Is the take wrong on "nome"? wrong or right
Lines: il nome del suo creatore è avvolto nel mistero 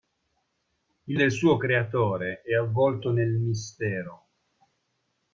wrong